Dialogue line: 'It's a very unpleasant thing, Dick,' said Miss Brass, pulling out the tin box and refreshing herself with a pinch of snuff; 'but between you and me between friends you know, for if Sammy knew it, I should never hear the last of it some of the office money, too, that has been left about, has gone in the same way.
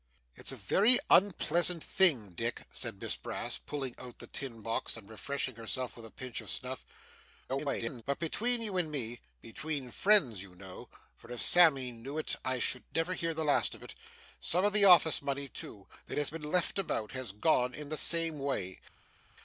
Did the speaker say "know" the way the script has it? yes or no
yes